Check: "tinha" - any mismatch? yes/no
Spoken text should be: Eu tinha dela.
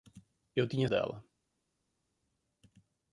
no